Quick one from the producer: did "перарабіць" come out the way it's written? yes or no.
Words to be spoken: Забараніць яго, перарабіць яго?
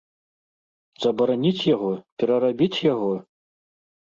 yes